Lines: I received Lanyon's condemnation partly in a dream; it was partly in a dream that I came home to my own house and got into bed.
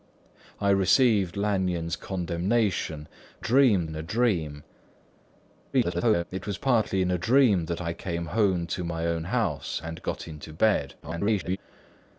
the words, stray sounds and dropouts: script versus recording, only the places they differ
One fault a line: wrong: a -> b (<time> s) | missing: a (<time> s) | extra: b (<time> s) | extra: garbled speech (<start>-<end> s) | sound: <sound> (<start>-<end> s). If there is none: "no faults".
wrong: partly -> dream (3.4 s)
extra: garbled speech (5.7-6.2 s)
extra: garbled speech (11.0-11.6 s)